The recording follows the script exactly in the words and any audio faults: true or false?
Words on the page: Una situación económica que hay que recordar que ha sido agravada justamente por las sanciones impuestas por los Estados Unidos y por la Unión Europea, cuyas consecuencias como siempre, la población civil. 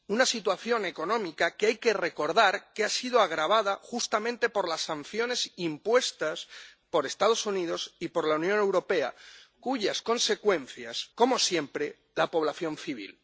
true